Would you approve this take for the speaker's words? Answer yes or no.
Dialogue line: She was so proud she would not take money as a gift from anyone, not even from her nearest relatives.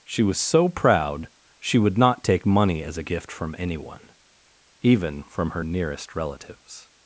no